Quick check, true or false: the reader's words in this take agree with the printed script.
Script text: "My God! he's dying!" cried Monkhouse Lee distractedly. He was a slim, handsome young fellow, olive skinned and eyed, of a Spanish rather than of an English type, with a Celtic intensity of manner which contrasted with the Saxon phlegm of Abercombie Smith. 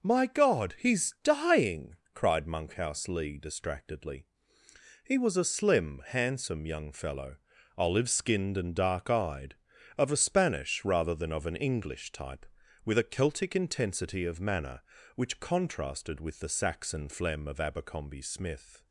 false